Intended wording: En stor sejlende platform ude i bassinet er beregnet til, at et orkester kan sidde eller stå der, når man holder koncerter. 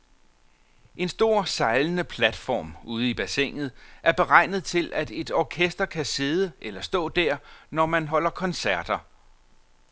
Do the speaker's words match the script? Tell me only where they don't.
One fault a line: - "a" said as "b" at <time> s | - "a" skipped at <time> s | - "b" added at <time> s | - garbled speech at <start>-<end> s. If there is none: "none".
none